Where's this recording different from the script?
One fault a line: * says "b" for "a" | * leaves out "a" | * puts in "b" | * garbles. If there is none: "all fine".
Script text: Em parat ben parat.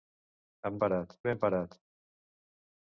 all fine